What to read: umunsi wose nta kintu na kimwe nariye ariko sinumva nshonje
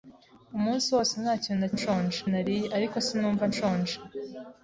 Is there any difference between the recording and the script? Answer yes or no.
yes